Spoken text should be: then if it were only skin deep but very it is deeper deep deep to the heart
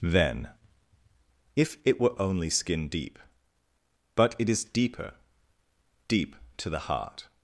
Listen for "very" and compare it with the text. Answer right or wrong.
wrong